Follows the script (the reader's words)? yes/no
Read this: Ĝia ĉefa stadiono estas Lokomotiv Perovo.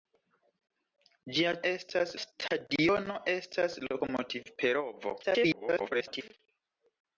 no